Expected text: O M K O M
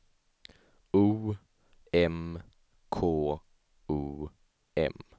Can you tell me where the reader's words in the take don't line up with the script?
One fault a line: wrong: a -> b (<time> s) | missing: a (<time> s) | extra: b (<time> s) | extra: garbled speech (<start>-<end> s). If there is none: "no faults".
no faults